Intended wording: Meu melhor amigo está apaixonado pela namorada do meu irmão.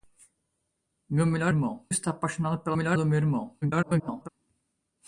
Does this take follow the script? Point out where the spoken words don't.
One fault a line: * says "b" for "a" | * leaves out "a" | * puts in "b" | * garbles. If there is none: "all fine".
* says "irmão" for "amigo"
* says "melhor" for "namorada"
* garbles